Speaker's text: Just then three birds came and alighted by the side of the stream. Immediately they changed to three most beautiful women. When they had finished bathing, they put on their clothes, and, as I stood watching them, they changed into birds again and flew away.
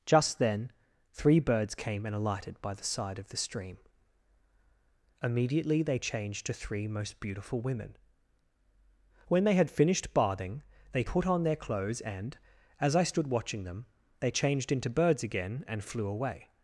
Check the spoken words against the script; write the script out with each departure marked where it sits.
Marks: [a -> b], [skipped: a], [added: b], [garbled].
Just then three birds came and alighted by the side of the stream. Immediately they changed to three most beautiful women. When they had finished bathing, they put on their clothes, and, as I stood watching them, they changed into birds again and flew away.